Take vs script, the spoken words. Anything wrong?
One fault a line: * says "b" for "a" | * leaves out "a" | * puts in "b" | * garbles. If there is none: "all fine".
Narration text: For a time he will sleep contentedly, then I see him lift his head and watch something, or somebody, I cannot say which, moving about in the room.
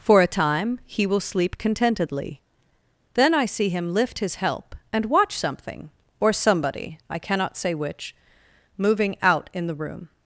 * says "help" for "head"
* says "out" for "about"